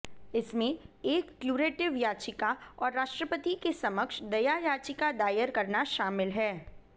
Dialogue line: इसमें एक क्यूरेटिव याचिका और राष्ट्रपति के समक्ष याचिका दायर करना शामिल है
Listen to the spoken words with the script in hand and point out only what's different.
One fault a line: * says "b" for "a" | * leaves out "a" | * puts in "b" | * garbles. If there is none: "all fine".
* puts in "दया"